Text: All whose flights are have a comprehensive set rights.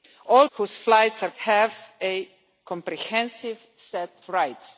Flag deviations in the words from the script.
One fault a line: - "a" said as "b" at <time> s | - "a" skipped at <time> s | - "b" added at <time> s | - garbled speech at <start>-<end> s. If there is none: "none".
none